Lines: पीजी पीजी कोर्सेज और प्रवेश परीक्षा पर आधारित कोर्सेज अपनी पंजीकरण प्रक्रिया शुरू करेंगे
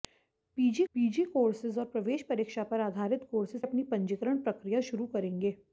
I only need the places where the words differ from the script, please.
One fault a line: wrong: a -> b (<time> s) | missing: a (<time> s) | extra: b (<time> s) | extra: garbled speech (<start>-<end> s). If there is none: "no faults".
no faults